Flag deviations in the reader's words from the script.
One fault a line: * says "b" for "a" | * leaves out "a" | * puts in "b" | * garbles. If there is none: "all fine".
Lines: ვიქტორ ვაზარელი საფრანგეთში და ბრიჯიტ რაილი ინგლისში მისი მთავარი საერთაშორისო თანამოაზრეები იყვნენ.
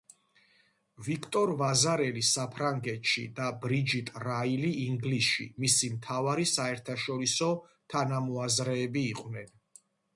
all fine